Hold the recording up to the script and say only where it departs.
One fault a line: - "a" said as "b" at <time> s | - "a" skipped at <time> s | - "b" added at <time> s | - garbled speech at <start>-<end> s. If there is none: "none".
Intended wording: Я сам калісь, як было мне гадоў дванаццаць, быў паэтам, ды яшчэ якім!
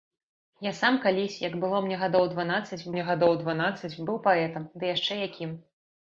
- "мне гадоў дванаццаць" added at 2.9 s